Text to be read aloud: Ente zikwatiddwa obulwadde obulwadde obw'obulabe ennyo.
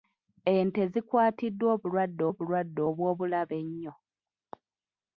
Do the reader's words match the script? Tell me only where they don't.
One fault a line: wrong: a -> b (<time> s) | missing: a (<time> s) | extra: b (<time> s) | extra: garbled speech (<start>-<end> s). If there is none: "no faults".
no faults